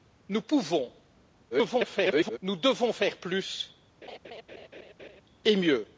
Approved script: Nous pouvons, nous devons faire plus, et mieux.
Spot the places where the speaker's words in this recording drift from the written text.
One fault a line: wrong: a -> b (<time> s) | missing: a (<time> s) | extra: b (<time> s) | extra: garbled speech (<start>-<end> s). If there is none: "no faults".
extra: garbled speech (1.5-2.4 s)